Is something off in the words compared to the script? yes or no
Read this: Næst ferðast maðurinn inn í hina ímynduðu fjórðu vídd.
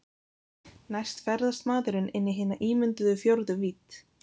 no